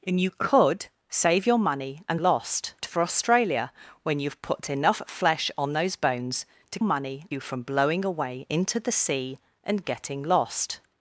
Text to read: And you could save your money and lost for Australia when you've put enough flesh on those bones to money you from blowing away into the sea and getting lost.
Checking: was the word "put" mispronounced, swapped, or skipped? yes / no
no